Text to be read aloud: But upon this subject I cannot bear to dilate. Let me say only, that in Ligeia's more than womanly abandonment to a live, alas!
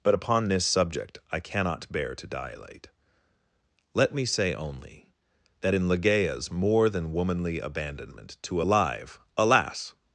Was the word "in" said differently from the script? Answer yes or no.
no